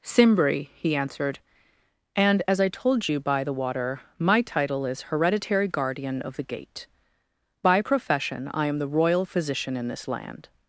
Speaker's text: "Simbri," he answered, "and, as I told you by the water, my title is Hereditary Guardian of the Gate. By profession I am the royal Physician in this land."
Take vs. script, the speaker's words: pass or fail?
pass